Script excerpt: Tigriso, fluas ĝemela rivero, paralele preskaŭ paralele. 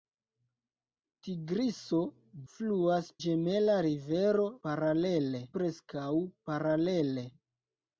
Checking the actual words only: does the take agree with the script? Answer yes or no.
yes